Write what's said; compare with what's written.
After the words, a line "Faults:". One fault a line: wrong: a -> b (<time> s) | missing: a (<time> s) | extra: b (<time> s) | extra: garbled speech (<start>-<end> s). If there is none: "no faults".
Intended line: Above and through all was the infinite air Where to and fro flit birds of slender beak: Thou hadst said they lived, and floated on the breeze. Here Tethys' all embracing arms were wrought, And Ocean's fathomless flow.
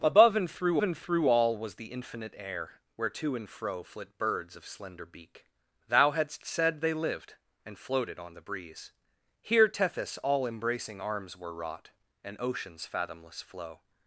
Above and through and through all was the infinite air Where to and fro flit birds of slender beak: Thou hadst said they lived, and floated on the breeze. Here Tethys' all embracing arms were wrought, And Ocean's fathomless flow.
Faults:
extra: and through (0.8 s)